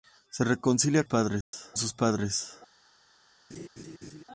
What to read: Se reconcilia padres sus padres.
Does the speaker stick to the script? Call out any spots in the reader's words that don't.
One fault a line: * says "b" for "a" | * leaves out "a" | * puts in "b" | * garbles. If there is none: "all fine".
all fine